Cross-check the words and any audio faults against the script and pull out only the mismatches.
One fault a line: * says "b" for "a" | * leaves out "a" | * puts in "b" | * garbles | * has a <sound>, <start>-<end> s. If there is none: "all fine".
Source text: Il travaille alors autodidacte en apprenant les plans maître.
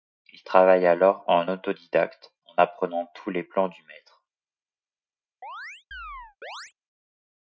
* puts in "en"
* puts in "tous"
* puts in "du"
* has a chirp, 5.4-6.7 s